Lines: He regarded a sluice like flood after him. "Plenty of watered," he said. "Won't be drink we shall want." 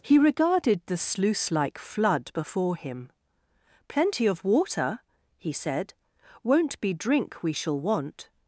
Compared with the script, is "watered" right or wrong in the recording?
wrong